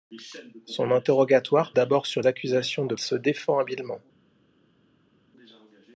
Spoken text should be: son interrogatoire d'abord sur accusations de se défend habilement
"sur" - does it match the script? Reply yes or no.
yes